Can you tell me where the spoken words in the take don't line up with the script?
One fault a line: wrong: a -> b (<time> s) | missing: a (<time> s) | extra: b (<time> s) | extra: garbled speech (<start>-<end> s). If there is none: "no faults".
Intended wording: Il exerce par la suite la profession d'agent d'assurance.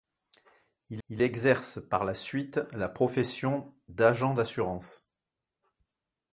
extra: il (1.1 s)